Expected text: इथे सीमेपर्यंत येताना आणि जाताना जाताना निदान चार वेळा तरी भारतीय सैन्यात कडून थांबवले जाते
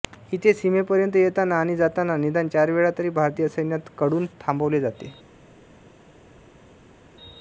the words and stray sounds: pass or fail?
fail